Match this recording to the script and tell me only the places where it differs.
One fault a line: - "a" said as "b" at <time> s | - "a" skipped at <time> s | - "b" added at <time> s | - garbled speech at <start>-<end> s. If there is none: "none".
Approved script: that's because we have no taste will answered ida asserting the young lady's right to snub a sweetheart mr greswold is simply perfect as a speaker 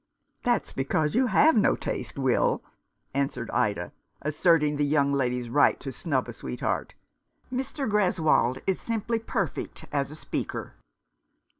- "we" said as "you" at 1.1 s